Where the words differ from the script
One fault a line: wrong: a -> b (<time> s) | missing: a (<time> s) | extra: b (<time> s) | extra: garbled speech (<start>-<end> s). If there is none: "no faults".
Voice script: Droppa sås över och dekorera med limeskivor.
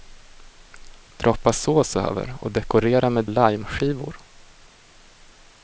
no faults